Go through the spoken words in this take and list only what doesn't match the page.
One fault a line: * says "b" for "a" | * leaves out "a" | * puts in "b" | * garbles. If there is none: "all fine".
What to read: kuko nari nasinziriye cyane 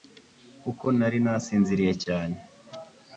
all fine